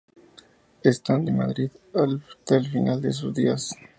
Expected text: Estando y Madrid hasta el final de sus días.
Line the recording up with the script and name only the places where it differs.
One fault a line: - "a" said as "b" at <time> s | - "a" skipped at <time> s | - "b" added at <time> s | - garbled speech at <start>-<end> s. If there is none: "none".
none